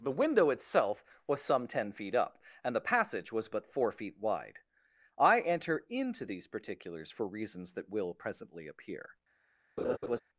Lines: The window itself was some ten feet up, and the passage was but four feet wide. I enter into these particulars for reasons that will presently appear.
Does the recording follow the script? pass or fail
pass